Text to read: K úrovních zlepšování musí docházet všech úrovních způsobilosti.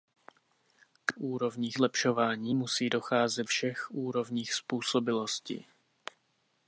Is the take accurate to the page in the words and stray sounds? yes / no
yes